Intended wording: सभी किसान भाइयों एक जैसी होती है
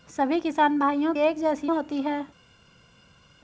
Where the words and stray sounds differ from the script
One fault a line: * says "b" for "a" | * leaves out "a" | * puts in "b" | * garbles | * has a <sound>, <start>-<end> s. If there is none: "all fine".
all fine